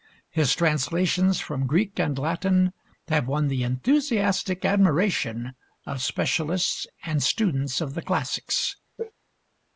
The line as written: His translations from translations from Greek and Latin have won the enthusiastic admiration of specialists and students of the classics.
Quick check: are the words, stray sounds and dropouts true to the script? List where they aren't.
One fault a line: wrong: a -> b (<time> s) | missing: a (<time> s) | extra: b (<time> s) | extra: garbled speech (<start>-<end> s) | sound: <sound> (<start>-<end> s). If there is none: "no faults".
missing: translations from (1.7 s)
sound: sneeze (9.0-9.1 s)